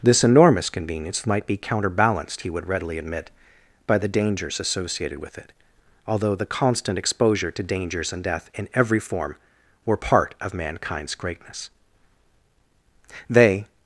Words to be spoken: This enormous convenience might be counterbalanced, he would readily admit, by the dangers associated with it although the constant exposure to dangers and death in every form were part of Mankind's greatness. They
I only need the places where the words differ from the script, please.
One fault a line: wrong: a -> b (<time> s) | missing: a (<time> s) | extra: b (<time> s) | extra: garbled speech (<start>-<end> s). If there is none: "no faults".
no faults